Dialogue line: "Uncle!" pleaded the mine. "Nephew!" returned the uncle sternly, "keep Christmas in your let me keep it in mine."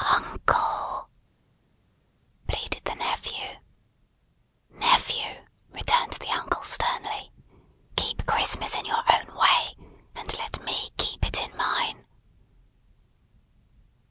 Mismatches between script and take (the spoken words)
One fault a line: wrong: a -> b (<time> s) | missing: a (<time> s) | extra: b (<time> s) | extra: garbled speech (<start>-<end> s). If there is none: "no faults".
wrong: mine -> nephew (2.9 s)
extra: own way and (9.1 s)